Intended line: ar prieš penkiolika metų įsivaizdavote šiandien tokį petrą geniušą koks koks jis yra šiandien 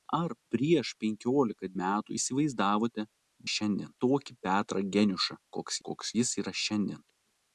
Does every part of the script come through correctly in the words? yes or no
yes